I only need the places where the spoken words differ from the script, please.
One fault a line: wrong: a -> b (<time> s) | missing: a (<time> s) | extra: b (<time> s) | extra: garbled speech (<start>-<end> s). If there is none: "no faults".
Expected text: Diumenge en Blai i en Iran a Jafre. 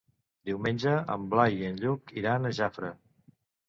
extra: Lluc (1.9 s)